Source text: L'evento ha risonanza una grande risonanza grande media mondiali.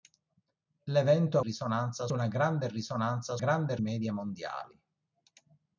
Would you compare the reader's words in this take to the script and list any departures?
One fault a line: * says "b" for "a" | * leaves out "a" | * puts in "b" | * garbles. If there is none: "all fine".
all fine